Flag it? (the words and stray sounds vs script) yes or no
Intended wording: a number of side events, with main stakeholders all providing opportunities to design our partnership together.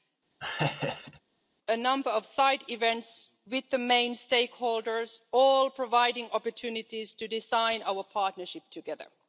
yes